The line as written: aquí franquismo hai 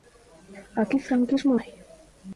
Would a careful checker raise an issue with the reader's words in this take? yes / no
no